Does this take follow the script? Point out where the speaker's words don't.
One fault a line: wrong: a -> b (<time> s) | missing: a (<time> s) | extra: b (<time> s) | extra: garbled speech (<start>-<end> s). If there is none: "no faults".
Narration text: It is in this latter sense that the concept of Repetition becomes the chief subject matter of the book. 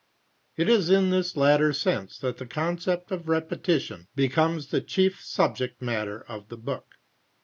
no faults